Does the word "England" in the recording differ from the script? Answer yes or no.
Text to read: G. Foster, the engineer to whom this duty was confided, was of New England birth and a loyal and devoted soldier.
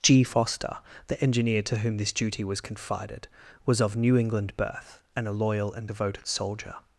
no